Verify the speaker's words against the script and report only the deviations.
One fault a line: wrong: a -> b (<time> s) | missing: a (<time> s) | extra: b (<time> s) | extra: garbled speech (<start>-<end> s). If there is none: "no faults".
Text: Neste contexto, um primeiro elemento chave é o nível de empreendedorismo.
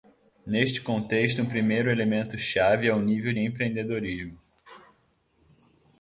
missing: de (3.3 s)